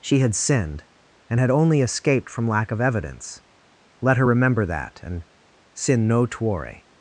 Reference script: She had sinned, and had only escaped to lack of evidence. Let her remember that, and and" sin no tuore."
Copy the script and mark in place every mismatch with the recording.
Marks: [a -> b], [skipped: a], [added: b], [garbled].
She had sinned, and had only escaped [to -> from] lack of evidence. Let her remember that, and [skipped: and"] sin no tuore."